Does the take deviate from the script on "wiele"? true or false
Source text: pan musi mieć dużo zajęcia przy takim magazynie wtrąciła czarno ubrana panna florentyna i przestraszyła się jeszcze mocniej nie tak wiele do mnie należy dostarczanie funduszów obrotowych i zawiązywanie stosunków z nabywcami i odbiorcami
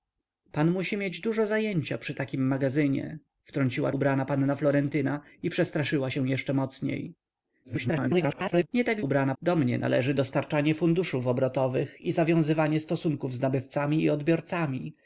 true